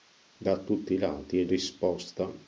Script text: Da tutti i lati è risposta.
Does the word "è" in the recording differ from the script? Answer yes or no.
no